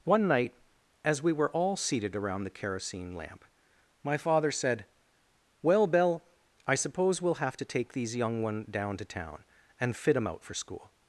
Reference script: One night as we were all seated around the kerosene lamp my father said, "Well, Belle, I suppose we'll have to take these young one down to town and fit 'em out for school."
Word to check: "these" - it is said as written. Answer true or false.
true